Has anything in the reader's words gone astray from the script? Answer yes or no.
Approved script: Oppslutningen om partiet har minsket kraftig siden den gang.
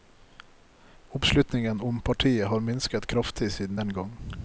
no